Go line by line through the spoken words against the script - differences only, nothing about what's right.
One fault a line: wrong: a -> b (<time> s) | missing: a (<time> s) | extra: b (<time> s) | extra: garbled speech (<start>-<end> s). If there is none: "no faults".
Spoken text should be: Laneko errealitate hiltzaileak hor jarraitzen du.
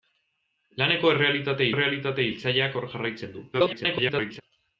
extra: errealitate (1.7 s)
extra: garbled speech (3.5-4.4 s)